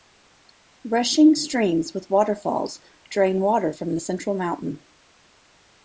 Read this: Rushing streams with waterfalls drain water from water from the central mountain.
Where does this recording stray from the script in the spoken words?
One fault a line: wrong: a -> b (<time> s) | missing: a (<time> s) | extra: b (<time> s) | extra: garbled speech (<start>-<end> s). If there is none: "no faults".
missing: water from (4.0 s)